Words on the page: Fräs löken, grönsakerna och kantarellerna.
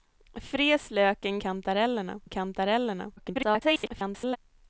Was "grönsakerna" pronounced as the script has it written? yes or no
no